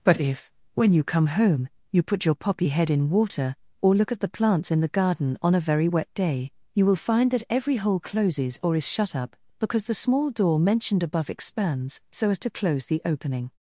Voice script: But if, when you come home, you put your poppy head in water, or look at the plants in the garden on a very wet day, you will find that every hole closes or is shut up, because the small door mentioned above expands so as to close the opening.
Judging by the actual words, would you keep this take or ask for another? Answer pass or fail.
pass